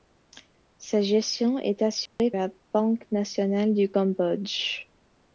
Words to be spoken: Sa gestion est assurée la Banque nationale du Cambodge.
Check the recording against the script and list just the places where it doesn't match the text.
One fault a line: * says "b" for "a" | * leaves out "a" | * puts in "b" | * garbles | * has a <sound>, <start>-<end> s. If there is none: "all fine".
* has a dropout, 2.1-2.2 s